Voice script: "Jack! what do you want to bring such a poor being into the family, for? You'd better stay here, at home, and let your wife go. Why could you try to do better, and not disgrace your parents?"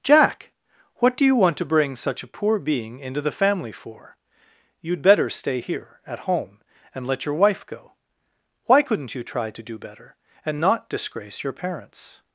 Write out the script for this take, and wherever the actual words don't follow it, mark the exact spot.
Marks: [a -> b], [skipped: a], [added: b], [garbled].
"Jack! what do you want to bring such a poor being into the family, for? You'd better stay here, at home, and let your wife go. Why [could -> couldn't] you try to do better, and not disgrace your parents?"